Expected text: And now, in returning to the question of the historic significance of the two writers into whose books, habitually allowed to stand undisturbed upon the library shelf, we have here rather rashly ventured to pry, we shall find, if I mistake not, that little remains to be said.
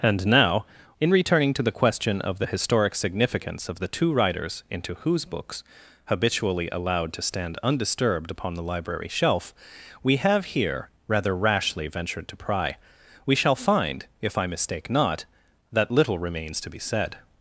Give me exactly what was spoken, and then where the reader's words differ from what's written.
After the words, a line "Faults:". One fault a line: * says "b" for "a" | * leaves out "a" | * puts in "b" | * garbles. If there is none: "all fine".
And now, in returning to the question of the historic significance of the two writers into whose books, habitually allowed to stand undisturbed upon the library shelf, we have here rather rashly ventured to pry, we shall find, if I mistake not, that little remains to be said.
Faults:
all fine